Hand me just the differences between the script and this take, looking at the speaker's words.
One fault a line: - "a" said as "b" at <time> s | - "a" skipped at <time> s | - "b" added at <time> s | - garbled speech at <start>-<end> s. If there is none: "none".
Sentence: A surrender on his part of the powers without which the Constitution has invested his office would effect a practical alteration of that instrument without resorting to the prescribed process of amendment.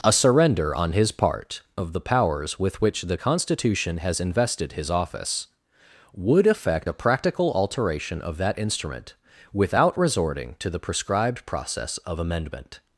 - "without" said as "with" at 2.6 s